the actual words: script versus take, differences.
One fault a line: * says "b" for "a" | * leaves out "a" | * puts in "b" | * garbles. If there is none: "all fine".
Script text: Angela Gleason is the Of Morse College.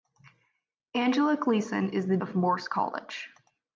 all fine